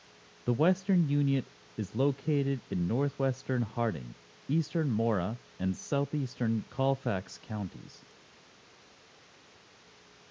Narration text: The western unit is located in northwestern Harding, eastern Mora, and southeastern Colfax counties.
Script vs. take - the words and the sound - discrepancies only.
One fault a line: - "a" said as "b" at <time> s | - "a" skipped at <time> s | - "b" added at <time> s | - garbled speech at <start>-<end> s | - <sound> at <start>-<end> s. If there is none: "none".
none